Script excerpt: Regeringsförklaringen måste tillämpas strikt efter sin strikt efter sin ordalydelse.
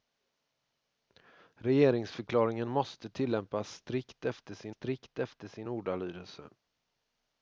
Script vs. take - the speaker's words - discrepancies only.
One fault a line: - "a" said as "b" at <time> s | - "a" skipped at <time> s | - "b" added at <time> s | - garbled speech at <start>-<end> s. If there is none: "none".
none